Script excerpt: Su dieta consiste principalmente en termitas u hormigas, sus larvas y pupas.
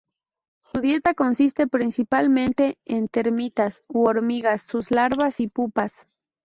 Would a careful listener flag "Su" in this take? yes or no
no